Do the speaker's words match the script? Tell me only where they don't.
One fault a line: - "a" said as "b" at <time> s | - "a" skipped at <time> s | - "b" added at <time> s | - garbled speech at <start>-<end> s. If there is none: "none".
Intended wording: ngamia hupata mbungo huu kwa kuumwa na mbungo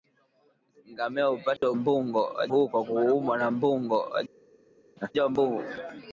none